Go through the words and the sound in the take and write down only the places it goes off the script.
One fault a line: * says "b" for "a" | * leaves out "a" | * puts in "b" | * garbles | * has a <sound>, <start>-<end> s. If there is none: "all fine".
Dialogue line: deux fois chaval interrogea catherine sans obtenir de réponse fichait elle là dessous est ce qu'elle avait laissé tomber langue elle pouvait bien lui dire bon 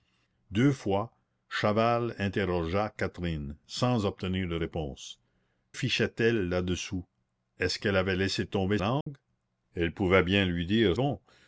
* has a dropout, 9.0-9.1 s